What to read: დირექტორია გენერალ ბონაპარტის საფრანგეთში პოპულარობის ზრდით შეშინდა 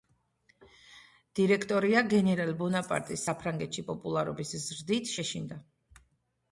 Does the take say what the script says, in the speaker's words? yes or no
yes